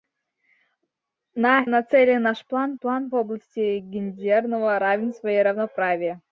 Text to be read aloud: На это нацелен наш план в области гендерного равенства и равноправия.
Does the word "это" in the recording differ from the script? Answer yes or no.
yes